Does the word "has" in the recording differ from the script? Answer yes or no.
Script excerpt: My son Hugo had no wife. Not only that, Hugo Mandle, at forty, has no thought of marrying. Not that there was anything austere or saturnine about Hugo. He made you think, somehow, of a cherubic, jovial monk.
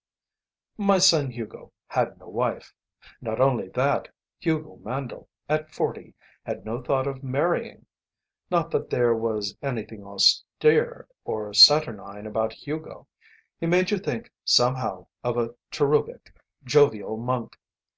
yes